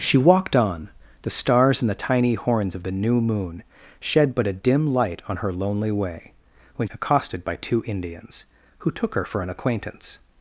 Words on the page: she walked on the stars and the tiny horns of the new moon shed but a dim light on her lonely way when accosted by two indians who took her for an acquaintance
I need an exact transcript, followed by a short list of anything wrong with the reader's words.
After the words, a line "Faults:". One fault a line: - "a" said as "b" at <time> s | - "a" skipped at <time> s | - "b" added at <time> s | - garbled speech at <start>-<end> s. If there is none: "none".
she walked on the stars and the tiny horns of the new moon shed but a dim light on her lonely way when accosted by two indians who took her for an acquaintance
Faults:
none